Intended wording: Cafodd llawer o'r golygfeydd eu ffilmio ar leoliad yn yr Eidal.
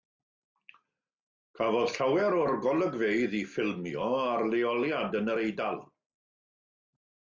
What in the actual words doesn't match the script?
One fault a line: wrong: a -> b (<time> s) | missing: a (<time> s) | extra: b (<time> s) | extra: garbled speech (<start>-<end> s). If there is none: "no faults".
no faults